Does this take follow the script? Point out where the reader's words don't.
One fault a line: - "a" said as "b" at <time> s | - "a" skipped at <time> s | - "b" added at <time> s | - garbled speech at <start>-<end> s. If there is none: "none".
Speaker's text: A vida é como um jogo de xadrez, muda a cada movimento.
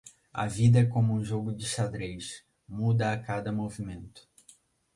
none